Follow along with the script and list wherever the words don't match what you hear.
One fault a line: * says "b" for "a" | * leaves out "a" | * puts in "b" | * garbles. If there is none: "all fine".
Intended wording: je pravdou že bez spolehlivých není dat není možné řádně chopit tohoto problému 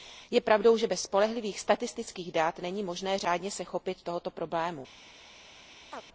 * says "statistických" for "není"
* puts in "se"